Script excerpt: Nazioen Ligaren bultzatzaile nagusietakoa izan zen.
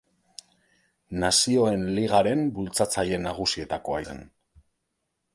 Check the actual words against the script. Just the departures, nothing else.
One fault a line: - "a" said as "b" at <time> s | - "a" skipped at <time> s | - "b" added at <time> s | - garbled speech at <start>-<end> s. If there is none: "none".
- "izan" skipped at 4.0 s